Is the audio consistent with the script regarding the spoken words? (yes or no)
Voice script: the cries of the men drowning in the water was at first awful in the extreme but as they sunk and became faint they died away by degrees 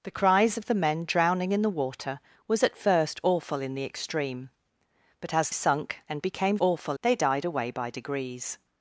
no